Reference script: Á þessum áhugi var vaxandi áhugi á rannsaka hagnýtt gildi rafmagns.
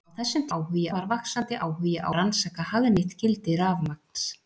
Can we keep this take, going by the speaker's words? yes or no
yes